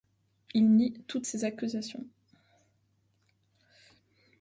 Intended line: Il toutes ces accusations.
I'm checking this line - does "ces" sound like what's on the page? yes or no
yes